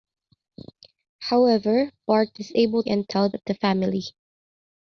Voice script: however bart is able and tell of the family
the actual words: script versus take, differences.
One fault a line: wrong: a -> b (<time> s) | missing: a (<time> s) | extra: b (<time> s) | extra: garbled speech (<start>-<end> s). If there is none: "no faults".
no faults